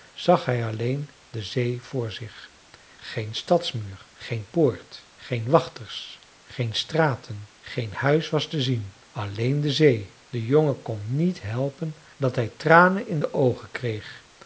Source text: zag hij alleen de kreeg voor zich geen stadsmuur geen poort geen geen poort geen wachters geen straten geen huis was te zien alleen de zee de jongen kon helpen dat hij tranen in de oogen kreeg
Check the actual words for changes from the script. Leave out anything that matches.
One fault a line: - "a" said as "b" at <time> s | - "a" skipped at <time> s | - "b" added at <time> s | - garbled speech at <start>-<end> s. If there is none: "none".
- "kreeg" said as "zee" at 1.4 s
- "geen poort geen" skipped at 5.5 s
- "niet" added at 11.1 s